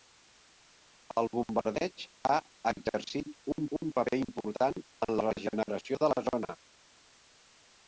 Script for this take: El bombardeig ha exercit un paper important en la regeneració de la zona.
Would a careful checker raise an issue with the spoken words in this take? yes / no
yes